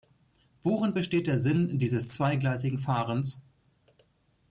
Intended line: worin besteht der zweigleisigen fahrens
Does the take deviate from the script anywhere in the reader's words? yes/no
yes